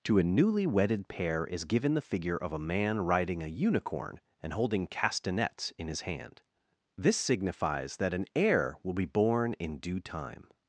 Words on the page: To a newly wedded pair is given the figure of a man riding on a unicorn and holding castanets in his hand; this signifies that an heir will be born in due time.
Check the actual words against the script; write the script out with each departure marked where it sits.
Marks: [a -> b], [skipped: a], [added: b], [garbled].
To a newly wedded pair is given the figure of a man riding [skipped: on] a unicorn and holding castanets in his hand; this signifies that an heir will be born in due time.